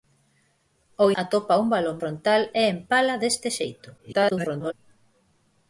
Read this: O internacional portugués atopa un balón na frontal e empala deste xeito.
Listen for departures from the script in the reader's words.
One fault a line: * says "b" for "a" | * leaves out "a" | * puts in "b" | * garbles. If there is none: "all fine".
* leaves out "internacional portugués"
* leaves out "na"
* garbles